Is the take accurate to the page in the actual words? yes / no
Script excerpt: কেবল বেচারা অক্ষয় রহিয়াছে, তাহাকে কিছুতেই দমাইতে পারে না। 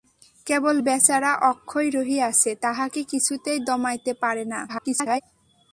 no